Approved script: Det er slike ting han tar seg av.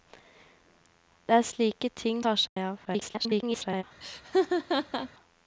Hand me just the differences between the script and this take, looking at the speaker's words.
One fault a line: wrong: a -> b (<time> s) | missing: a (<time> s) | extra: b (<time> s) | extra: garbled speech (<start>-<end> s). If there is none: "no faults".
missing: han (2.2 s)
extra: garbled speech (2.8-3.8 s)